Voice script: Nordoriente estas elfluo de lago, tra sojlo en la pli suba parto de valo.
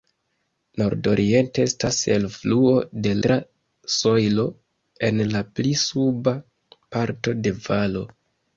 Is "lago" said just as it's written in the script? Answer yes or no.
no